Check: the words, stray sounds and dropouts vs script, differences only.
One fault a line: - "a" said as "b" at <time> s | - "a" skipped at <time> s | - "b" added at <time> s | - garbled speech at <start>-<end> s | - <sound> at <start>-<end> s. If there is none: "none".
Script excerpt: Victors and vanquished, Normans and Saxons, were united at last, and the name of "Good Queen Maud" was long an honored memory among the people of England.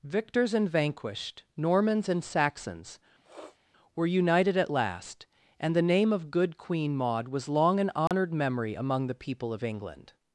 - sniff at 3.2-3.6 s
- dropout at 8.1-8.1 s